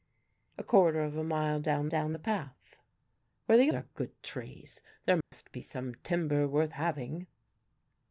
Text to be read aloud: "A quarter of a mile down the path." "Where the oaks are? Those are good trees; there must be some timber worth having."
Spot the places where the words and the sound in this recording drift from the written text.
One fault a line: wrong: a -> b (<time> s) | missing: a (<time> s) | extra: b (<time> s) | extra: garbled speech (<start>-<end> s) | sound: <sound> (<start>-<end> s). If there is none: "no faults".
extra: down (1.9 s)
missing: oaks are Those (3.7 s)
sound: dropout (5.2-5.3 s)